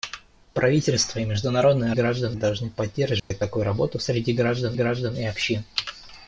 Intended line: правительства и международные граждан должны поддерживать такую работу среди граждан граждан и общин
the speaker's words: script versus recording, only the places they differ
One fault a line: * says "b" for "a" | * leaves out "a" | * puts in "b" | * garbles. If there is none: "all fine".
all fine